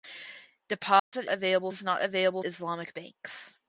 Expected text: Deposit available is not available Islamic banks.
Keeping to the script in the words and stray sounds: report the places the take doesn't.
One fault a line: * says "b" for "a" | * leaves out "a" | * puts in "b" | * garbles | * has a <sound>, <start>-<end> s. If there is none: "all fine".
* has a dropout, 1.0-1.1 s